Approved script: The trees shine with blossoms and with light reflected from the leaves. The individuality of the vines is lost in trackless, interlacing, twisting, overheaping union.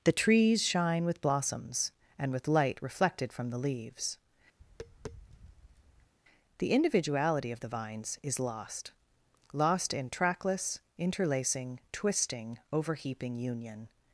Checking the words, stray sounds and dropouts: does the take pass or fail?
fail